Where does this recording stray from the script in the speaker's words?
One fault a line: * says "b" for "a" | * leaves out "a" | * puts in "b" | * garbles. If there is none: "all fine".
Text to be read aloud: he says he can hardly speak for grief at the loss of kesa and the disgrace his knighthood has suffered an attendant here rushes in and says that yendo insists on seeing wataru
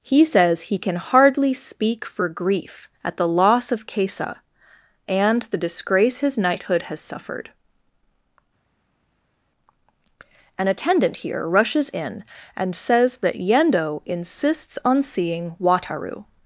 all fine